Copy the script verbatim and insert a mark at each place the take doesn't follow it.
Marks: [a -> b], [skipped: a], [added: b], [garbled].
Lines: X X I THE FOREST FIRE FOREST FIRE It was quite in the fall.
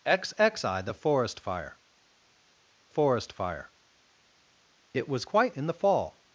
X X I THE FOREST FIRE FOREST FIRE It was quite in the fall.